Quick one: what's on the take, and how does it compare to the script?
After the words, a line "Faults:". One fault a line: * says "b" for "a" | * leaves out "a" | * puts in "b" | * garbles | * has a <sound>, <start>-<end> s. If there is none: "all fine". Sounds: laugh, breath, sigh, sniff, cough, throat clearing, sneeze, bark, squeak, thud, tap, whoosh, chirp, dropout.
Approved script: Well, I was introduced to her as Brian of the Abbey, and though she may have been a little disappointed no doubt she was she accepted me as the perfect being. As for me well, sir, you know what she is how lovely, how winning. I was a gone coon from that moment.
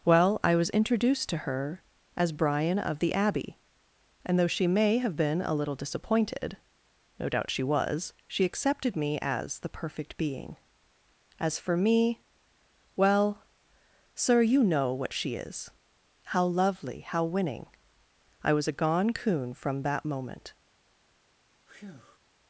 Well, I was introduced to her as Brian of the Abbey, and though she may have been a little disappointed no doubt she was she accepted me as the perfect being. As for me well, sir, you know what she is how lovely, how winning. I was a gone coon from that moment.
Faults:
* has a breath, 21.7-22.2 s